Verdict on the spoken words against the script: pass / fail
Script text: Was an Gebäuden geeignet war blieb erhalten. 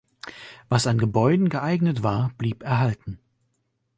pass